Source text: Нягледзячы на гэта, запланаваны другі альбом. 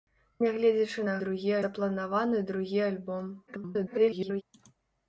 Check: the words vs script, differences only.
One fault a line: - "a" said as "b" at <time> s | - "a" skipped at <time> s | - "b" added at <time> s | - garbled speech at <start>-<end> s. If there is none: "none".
- "гэта" said as "другі" at 1.2 s
- garbled speech at 3.5-4.4 s